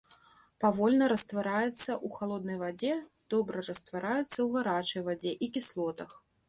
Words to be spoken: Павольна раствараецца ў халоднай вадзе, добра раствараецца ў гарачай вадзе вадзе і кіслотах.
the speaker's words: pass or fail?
fail